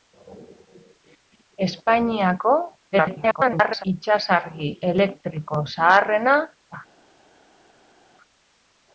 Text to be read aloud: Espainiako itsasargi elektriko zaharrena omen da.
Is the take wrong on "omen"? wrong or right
wrong